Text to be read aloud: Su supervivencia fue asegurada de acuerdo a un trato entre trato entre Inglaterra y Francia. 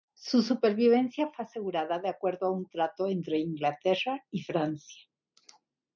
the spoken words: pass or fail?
fail